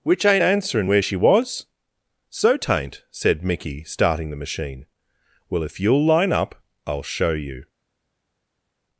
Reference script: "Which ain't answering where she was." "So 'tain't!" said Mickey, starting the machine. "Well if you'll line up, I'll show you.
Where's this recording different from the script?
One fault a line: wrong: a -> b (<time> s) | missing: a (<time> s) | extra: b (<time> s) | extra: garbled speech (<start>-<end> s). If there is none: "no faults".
no faults